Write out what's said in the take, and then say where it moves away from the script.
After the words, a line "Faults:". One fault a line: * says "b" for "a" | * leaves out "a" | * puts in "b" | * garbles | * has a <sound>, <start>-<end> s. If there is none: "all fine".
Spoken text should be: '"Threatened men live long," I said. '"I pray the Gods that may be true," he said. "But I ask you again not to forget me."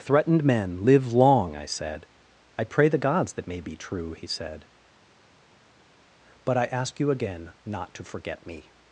'"Threatened men live long," I said. '"I pray the Gods that may be true," he said. "But I ask you again not to forget me."
Faults:
all fine